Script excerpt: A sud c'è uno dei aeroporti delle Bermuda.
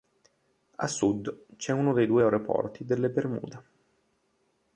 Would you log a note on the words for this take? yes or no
yes